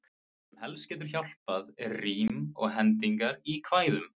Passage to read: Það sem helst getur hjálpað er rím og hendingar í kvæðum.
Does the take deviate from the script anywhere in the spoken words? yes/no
no